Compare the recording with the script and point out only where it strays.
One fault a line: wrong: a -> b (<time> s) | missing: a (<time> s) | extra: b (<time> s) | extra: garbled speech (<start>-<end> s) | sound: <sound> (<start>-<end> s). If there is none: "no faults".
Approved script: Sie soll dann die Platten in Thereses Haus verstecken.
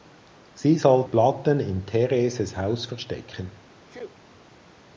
missing: dann die (1.1 s)
sound: sneeze (3.8-4.2 s)